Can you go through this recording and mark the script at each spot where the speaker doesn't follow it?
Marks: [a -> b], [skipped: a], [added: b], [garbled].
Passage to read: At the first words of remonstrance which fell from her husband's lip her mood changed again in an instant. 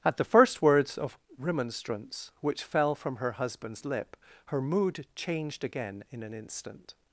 At the first words of remonstrance which fell from her husband's lip her mood changed again in an instant.